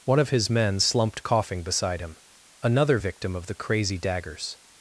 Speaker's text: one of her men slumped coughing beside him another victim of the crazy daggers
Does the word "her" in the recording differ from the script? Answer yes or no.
yes